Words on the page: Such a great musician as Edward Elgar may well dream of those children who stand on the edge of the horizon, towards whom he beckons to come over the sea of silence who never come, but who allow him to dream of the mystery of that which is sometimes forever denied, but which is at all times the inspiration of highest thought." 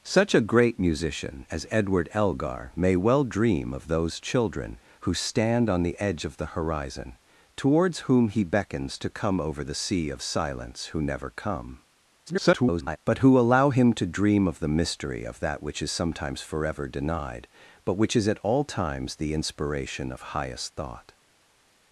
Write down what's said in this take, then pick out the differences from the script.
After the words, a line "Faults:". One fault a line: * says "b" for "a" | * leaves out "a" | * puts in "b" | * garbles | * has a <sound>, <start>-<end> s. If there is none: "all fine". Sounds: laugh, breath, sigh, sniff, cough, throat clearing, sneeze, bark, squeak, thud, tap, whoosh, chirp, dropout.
Such a great musician as Edward Elgar may well dream of those children who stand on the edge of the horizon, towards whom he beckons to come over the sea of silence who never come, [garbled] but who allow him to dream of the mystery of that which is sometimes forever denied, but which is at all times the inspiration of highest thought."
Faults:
* garbles